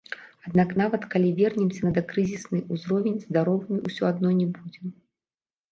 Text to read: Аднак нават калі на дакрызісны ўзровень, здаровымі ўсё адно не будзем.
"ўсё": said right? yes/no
yes